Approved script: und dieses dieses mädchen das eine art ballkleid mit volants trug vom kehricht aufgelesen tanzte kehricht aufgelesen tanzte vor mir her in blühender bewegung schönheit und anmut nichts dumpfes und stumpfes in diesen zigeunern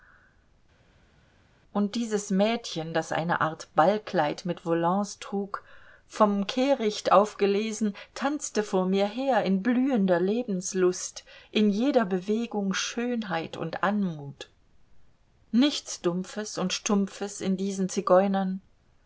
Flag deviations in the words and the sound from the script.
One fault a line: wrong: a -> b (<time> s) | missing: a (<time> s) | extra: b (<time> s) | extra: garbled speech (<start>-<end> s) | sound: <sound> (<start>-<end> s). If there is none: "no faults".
missing: dieses (2.3 s)
missing: kehricht aufgelesen tanzte (8.6 s)
extra: lebenslust in jeder (10.2 s)